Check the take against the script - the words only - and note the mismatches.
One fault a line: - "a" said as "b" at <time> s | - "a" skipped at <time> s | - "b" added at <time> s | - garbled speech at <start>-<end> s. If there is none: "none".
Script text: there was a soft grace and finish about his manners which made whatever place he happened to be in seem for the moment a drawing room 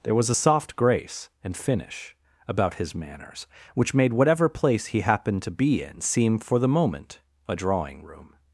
none